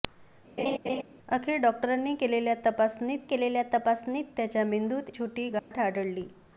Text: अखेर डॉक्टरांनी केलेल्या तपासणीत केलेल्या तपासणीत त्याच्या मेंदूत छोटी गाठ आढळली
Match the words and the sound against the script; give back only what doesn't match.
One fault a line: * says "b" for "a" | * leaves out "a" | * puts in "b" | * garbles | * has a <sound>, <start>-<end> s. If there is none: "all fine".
* has a laugh, 0.6-1.0 s
* has a dropout, 5.6-5.7 s